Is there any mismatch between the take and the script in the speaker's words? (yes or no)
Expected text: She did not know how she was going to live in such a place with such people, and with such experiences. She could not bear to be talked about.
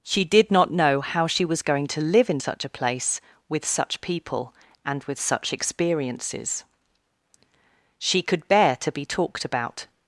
yes